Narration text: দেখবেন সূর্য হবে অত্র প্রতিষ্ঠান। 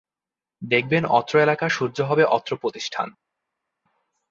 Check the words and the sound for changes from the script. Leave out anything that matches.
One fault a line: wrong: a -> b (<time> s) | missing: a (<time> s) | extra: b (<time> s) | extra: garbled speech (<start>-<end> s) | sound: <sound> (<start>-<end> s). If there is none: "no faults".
extra: অত্র এলাকার (1.1 s)